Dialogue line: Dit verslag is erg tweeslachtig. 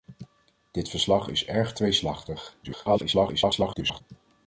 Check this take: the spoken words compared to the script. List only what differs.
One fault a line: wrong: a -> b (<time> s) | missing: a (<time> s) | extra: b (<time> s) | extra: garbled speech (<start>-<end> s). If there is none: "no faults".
extra: garbled speech (2.6-4.0 s)